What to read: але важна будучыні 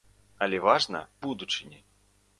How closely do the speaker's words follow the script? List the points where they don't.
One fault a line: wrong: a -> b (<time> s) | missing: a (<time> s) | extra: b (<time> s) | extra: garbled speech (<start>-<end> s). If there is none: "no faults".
no faults